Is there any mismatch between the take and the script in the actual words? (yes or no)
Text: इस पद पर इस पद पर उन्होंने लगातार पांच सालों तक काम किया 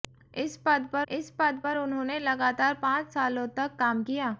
no